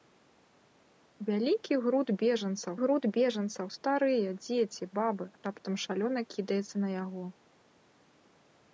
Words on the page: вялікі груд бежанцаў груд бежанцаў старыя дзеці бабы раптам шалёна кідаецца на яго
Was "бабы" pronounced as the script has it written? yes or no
yes